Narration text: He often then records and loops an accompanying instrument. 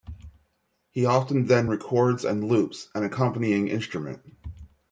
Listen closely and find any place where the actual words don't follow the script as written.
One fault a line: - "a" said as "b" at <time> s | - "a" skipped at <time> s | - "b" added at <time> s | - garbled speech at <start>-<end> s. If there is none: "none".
none